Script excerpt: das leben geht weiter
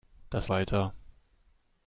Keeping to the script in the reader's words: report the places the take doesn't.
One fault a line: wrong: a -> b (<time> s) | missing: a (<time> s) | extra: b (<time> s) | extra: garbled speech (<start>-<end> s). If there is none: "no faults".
missing: leben geht (0.5 s)